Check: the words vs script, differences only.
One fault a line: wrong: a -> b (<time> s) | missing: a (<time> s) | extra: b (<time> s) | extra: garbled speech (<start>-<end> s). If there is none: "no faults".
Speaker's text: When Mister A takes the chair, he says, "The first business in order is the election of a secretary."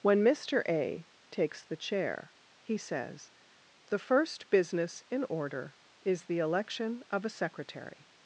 no faults